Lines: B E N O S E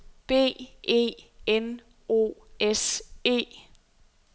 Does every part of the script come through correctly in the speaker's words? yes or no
yes